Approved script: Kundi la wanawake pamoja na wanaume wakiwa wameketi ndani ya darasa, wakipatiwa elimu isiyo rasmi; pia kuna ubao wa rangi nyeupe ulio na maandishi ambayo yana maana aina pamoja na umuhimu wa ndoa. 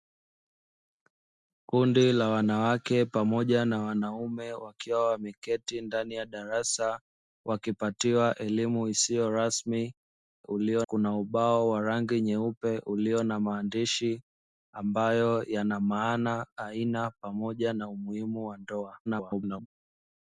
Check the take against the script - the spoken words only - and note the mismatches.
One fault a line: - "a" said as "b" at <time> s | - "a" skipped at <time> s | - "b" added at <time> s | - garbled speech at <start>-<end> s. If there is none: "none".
- "pia" said as "ulio" at 10.4 s
- garbled speech at 19.1-19.7 s